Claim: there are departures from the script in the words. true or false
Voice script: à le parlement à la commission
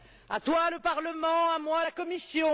true